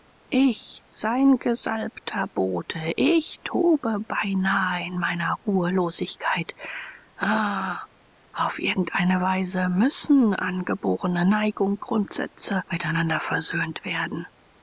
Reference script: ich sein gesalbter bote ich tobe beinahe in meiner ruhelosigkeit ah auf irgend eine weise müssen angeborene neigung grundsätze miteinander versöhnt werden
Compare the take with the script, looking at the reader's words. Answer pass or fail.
pass